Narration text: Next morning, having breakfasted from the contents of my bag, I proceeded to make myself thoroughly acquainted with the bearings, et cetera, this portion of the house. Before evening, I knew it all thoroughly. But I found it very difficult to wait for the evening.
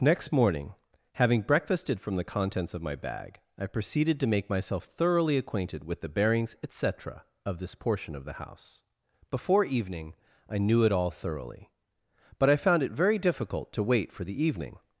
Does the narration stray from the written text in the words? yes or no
yes